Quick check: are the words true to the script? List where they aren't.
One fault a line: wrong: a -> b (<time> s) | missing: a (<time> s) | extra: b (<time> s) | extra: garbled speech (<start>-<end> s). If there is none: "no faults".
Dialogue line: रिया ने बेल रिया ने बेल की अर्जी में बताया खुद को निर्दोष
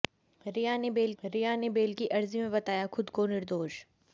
no faults